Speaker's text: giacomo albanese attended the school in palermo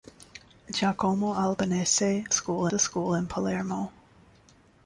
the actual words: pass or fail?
fail